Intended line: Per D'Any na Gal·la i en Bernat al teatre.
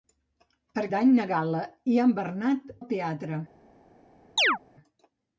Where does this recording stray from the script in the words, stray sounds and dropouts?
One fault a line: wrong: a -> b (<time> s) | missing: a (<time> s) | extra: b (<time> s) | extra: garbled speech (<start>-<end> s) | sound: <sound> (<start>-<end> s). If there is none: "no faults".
sound: chirp (4.4-4.6 s)